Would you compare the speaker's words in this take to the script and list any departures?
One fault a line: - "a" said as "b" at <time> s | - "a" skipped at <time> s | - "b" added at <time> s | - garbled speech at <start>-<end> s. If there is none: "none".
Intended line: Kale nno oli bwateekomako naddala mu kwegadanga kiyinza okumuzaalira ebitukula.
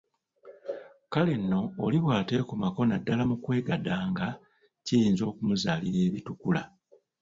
none